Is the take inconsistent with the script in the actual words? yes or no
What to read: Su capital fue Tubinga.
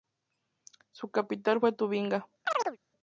no